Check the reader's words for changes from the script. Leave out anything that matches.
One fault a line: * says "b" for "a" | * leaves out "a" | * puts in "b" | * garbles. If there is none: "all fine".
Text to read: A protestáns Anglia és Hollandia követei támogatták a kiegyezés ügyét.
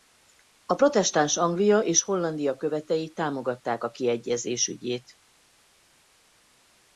all fine